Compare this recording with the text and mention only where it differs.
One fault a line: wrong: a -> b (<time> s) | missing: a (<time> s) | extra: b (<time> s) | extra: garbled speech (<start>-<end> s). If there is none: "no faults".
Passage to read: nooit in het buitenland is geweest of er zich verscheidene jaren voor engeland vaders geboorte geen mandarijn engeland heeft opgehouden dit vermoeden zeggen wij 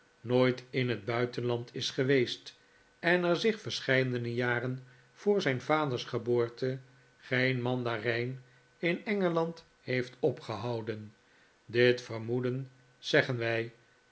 wrong: of -> en (3.0 s)
wrong: engeland -> zijn (5.4 s)
extra: in (8.8 s)